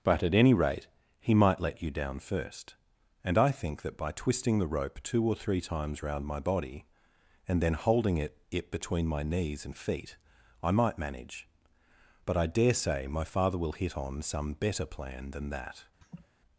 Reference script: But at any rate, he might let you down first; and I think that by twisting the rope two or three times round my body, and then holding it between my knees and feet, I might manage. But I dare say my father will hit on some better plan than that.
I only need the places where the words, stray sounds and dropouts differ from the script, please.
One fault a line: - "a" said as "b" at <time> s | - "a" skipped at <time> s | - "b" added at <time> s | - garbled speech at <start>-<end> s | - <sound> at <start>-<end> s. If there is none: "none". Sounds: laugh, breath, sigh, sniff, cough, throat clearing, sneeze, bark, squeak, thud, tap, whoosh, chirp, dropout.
- "it" added at 8.5 s
- laugh at 16.0-16.3 s